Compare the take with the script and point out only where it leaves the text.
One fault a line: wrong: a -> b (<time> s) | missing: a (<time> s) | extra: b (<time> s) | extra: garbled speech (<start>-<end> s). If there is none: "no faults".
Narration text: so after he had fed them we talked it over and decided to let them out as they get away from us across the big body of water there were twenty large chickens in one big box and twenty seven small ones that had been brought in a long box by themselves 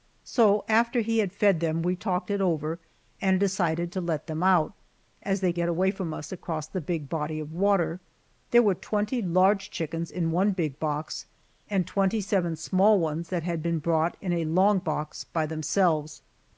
no faults